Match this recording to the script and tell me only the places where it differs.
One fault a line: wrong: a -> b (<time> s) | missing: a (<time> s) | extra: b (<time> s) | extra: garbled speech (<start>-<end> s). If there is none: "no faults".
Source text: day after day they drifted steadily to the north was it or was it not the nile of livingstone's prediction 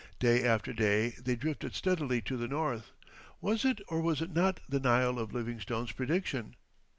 no faults